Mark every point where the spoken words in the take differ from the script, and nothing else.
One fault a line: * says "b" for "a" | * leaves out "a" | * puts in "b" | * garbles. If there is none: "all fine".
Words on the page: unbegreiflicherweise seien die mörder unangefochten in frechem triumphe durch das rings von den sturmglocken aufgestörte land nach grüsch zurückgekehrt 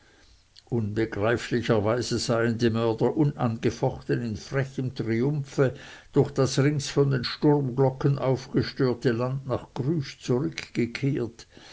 all fine